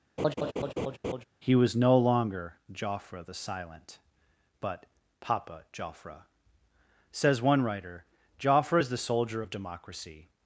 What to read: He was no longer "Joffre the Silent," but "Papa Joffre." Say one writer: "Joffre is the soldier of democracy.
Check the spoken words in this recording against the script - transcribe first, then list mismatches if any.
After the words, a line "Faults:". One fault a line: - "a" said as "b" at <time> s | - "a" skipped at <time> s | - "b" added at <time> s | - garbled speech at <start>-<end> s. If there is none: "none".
He was no longer "Joffre the Silent," but "Papa Joffre." Says one writer: "Joffre is the soldier of democracy.
Faults:
- "Say" said as "Says" at 7.1 s